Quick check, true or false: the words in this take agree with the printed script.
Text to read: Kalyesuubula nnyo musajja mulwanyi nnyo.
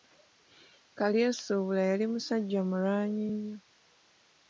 false